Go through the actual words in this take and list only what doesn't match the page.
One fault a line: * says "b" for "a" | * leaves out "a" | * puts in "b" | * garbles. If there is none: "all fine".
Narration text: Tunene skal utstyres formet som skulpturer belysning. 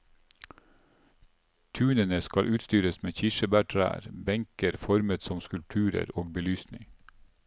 * puts in "med kirsebærtrær benker"
* puts in "og"